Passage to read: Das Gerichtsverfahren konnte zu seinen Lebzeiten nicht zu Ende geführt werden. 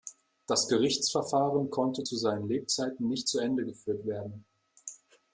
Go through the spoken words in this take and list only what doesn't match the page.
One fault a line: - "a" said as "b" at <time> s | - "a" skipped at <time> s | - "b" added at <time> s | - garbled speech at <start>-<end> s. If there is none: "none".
none